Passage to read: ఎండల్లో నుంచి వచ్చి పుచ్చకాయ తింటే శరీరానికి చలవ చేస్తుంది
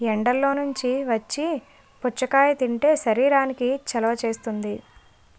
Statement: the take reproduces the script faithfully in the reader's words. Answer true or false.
true